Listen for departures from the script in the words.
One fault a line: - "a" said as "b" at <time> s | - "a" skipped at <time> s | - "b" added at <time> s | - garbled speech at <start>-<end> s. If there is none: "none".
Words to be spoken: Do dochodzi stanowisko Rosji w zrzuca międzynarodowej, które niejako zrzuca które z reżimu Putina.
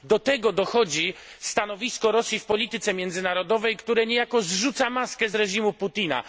- "tego" added at 0.2 s
- "zrzuca" said as "polityce" at 2.5 s
- "które" said as "maskę" at 4.9 s